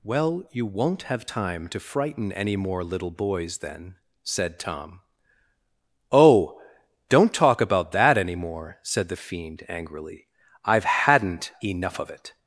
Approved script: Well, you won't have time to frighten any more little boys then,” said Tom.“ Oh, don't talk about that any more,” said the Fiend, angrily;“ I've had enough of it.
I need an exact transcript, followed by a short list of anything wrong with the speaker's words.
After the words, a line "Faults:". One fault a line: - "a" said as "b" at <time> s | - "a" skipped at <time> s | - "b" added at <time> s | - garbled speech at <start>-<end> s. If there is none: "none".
Well, you won't have time to frighten any more little boys then,” said Tom.“ Oh, don't talk about that any more,” said the Fiend, angrily;“ I've hadn't enough of it.
Faults:
- "had" said as "hadn't" at 10.8 s